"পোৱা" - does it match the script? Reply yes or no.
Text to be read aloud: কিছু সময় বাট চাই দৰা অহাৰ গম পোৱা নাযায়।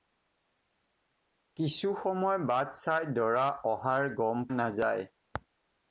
no